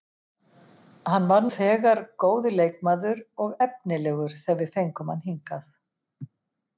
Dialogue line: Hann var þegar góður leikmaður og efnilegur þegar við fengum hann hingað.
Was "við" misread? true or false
false